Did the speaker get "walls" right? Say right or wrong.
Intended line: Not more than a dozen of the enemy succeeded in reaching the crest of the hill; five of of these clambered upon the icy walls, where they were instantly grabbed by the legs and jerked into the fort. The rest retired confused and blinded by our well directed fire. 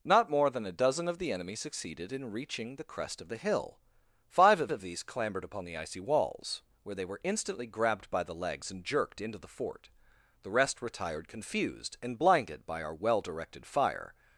right